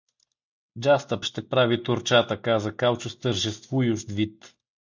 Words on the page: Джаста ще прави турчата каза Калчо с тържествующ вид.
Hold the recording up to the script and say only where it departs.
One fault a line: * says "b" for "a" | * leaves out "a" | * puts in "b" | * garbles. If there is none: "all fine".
all fine